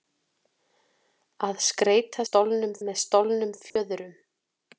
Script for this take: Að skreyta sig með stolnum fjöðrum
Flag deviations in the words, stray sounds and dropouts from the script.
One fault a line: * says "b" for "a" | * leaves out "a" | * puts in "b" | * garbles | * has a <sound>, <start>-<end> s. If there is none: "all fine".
* says "stolnum" for "sig"
* has a dropout, 3.7-3.8 s